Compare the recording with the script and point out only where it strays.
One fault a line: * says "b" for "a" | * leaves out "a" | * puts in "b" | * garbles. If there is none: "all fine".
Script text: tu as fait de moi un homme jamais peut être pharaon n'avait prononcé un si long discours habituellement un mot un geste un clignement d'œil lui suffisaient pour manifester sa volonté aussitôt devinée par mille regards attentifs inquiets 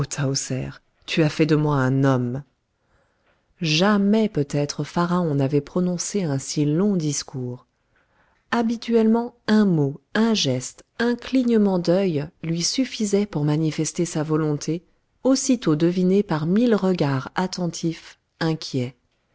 all fine